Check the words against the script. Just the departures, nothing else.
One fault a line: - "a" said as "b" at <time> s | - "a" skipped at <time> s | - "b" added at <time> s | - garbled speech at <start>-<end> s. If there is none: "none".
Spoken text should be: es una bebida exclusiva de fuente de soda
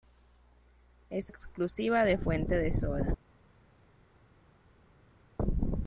- "una bebida" skipped at 1.3 s